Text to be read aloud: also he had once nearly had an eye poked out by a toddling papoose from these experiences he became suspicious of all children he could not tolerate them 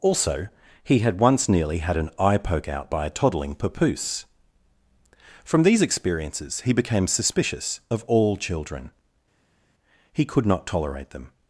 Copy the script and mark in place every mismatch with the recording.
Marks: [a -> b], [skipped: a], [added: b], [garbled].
also he had once nearly had an eye [poked -> poke] out by a toddling papoose from these experiences he became suspicious of all children he could not tolerate them